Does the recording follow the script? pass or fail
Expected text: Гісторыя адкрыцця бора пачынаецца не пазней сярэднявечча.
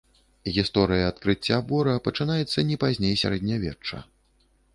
pass